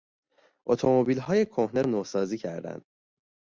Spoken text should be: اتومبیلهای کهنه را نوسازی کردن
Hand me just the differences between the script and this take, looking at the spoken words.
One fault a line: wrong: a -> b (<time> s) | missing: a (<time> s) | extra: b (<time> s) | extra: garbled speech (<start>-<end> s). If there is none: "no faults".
missing: را (1.8 s)